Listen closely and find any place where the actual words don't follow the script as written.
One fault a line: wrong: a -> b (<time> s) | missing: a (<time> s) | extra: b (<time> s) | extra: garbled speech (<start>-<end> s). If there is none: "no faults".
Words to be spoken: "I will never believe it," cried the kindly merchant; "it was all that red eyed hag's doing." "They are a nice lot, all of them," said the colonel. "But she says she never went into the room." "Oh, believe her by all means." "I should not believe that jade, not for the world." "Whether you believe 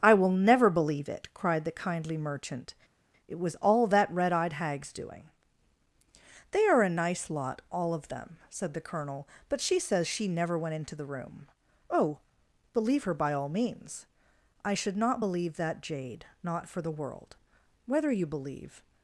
no faults